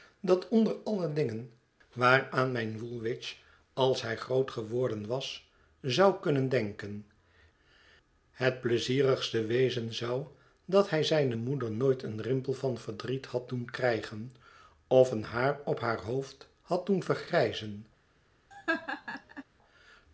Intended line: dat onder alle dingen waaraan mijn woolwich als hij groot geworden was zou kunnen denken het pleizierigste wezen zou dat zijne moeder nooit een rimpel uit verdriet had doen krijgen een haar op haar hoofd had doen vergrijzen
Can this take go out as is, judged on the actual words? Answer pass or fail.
fail